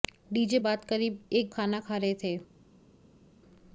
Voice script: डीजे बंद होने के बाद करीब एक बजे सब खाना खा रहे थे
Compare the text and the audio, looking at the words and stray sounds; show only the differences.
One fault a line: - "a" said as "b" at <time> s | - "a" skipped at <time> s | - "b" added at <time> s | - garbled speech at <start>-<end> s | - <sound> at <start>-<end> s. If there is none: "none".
- "बंद होने के" skipped at 0.6 s
- "बजे सब" skipped at 1.5 s